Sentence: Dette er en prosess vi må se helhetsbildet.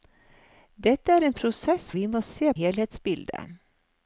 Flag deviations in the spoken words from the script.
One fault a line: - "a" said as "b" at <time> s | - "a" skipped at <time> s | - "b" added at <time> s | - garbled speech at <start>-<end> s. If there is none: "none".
none